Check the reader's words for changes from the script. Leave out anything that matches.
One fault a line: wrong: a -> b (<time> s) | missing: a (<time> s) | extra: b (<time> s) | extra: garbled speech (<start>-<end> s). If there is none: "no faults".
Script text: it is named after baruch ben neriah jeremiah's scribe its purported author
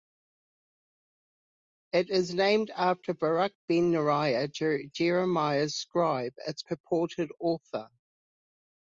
no faults